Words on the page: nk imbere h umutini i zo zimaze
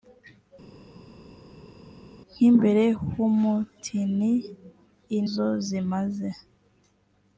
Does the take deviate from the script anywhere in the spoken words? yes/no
no